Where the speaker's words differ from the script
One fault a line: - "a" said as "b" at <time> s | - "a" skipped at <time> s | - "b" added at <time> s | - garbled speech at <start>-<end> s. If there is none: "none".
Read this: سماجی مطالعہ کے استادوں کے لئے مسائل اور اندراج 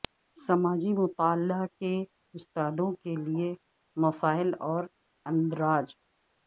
none